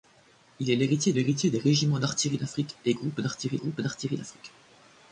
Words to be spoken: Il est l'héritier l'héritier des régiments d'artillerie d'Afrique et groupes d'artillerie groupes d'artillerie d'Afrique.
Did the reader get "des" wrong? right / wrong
right